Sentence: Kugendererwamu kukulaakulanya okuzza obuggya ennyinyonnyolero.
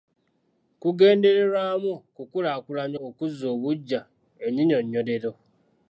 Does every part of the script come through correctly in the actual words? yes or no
yes